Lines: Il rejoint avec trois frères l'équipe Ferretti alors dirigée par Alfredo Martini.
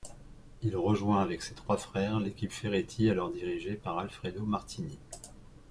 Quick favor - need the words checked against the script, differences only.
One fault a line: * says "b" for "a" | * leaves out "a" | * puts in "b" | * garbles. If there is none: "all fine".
* puts in "ses"